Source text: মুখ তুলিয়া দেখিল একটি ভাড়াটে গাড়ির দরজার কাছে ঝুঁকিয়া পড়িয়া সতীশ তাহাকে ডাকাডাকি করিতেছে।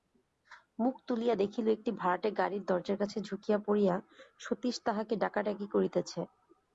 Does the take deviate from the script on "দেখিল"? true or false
false